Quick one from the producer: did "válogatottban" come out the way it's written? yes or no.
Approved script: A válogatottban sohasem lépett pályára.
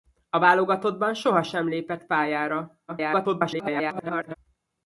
yes